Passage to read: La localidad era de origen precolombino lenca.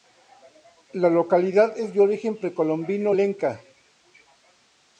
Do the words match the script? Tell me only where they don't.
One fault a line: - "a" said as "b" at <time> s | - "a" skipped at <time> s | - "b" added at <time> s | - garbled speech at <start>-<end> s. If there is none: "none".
- "era" said as "es" at 1.8 s